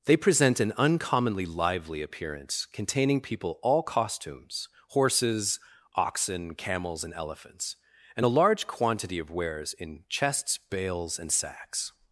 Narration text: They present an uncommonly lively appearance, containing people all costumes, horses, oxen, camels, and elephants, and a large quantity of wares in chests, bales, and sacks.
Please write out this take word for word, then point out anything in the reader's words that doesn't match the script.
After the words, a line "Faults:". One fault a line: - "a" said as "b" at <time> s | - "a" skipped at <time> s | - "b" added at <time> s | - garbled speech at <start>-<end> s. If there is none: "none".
They present an uncommonly lively appearance, containing people all costumes, horses, oxen, camels, and elephants, and a large quantity of wares in chests, bales, and sacks.
Faults:
none